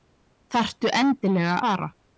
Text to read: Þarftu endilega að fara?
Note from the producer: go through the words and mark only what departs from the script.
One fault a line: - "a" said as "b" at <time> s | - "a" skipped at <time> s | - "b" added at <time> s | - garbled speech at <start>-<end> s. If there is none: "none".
- "að" skipped at 1.6 s